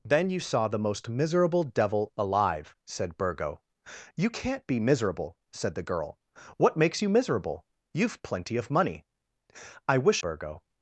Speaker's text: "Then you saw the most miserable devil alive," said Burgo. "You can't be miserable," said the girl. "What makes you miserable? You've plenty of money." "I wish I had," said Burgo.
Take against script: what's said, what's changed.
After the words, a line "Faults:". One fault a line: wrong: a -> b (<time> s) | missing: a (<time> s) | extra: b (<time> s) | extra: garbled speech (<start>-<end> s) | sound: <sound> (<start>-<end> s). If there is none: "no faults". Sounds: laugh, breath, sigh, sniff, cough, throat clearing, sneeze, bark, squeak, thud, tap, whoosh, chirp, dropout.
"Then you saw the most miserable devil alive," said Burgo. "You can't be miserable," said the girl. "What makes you miserable? You've plenty of money." "I wish Burgo.
Faults:
missing: I had said (10.2 s)